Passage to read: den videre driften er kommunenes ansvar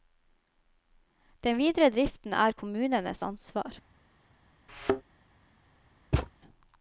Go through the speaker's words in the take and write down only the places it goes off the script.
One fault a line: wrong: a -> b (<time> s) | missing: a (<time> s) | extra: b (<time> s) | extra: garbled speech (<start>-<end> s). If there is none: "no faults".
no faults